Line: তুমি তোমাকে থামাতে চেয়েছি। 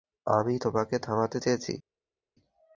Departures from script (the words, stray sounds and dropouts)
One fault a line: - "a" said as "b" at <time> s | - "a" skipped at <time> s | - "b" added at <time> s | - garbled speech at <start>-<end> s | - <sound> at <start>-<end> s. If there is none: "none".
- "তুমি" said as "আমি" at 0.3 s